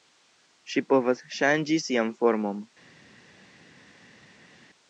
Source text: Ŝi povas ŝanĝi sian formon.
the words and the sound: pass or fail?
pass